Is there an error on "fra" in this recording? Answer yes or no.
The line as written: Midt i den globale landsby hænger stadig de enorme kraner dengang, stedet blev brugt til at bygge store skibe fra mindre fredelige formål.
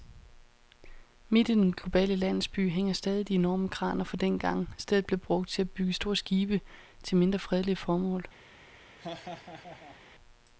yes